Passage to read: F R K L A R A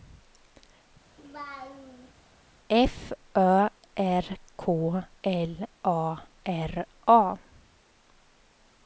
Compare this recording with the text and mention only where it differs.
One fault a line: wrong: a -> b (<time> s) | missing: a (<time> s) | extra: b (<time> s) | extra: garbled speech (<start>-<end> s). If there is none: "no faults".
extra: Ö (3.4 s)